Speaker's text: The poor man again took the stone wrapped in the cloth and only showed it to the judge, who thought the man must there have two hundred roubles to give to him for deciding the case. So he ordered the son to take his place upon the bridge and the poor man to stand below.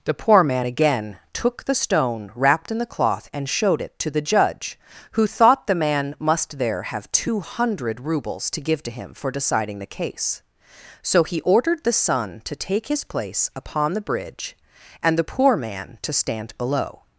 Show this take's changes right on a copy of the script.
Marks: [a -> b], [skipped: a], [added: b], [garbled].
The poor man again took the stone wrapped in the cloth and [skipped: only] showed it to the judge, who thought the man must there have two hundred roubles to give to him for deciding the case. So he ordered the son to take his place upon the bridge and the poor man to stand below.